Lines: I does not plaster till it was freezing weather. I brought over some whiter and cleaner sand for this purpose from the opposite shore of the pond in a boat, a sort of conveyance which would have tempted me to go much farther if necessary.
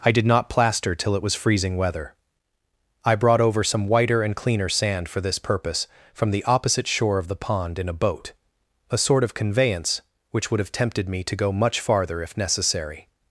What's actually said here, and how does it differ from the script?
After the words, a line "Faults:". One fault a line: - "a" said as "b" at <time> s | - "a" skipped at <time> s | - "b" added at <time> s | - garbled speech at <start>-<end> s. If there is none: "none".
I did not plaster till it was freezing weather. I brought over some whiter and cleaner sand for this purpose from the opposite shore of the pond in a boat, a sort of conveyance which would have tempted me to go much farther if necessary.
Faults:
- "does" said as "did" at 0.1 s